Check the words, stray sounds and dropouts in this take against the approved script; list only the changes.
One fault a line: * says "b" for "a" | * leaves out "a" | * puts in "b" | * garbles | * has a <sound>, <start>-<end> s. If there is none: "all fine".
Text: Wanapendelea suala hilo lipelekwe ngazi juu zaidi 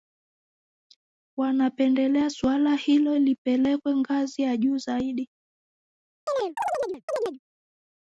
* puts in "ya"
* has a chirp, 6.3-7.4 s